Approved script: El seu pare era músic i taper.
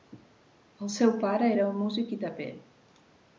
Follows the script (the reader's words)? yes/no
yes